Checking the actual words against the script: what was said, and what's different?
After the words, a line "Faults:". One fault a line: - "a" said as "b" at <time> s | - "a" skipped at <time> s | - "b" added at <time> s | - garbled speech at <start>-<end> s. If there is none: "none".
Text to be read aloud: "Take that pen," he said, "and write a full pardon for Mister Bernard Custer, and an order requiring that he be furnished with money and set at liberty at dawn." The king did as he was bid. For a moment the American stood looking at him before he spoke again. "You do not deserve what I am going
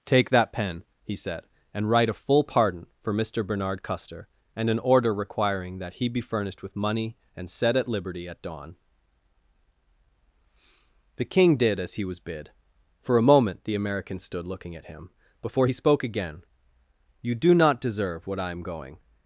"Take that pen," he said, "and write a full pardon for Mister Bernard Custer, and an order requiring that he be furnished with money and set at liberty at dawn." The king did as he was bid. For a moment the American stood looking at him before he spoke again. "You do not deserve what I am going
Faults:
none